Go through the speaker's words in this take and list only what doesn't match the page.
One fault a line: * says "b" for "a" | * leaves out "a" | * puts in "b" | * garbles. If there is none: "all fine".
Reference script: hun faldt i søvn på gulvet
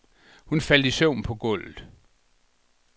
all fine